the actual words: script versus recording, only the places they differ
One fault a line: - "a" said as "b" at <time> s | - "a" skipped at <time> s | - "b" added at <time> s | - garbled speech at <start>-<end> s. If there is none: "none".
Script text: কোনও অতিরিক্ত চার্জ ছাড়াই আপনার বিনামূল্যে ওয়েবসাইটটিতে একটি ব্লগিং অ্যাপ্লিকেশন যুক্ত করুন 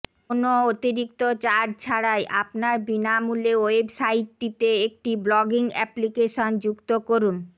none